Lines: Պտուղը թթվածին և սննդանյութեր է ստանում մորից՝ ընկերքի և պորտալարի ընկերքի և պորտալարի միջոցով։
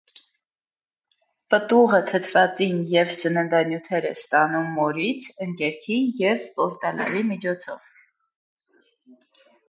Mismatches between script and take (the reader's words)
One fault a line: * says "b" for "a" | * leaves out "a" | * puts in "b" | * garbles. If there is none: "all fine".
* leaves out "ընկերքի և պորտալարի"